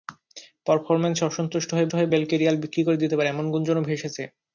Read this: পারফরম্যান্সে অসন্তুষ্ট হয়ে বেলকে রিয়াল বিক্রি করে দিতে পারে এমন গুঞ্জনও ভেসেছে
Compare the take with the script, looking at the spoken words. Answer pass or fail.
fail